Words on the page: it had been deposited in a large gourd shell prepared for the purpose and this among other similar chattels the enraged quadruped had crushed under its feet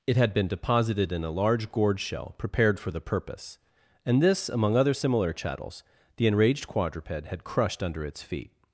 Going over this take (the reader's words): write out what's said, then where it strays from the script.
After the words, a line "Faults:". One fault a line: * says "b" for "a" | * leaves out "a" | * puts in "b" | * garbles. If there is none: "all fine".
it had been deposited in a large gourd shell prepared for the purpose and this among other similar chattels the enraged quadruped had crushed under its feet
Faults:
all fine